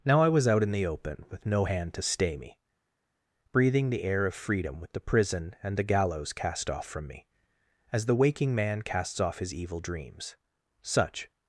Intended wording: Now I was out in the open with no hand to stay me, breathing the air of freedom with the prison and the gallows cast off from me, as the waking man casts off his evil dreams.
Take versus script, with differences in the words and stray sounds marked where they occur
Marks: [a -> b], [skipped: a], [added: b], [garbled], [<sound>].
Now I was out in the open with no hand to stay me, breathing the air of freedom with the prison and the gallows cast off from me, as the waking man casts off his evil dreams. [added: Such]